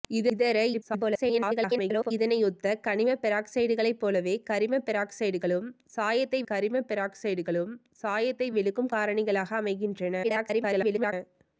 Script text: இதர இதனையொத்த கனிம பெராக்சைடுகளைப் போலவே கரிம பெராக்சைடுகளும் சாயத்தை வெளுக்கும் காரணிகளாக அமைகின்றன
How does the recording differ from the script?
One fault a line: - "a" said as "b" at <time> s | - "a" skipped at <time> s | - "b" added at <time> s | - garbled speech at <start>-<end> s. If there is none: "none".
- garbled speech at 0.7-2.1 s
- "கரிம பெராக்சைடுகளும் சாயத்தை" added at 6.5 s
- garbled speech at 10.2-11.1 s